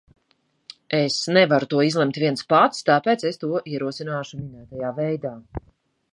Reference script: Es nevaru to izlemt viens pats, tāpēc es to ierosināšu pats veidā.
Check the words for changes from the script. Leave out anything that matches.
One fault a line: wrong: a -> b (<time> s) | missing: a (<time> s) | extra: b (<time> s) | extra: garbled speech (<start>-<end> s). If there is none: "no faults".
wrong: pats -> minētajā (4.4 s)